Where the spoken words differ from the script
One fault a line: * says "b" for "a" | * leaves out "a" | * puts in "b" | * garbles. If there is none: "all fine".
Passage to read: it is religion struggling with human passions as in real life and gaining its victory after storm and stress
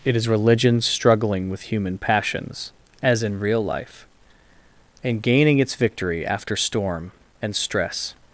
all fine